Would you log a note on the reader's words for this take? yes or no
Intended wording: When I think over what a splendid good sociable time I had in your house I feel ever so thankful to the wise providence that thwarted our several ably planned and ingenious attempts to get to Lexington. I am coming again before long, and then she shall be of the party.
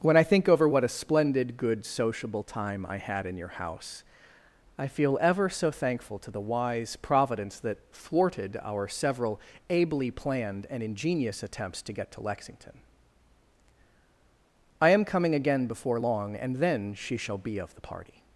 no